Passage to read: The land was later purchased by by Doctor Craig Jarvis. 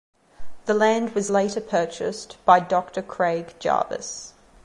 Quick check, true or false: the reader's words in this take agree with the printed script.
false